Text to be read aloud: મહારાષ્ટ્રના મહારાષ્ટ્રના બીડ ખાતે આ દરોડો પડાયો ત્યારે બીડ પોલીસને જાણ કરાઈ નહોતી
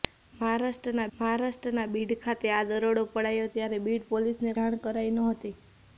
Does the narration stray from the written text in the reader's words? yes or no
no